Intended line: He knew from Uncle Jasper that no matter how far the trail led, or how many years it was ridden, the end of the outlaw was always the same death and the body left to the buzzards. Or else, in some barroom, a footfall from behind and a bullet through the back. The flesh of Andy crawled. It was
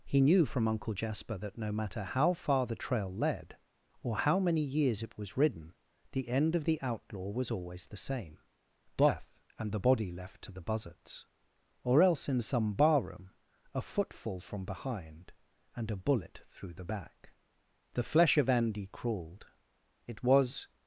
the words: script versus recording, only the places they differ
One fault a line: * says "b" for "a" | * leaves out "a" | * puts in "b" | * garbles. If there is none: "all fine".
all fine